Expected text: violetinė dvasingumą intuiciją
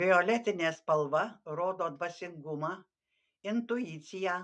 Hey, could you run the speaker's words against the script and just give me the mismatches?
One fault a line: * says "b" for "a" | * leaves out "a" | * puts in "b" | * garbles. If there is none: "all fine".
* puts in "spalva rodo"